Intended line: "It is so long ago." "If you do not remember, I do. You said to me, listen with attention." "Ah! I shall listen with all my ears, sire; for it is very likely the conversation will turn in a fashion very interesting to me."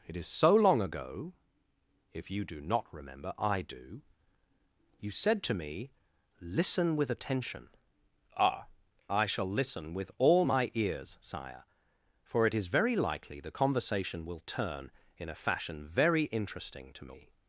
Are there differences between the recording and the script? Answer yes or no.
no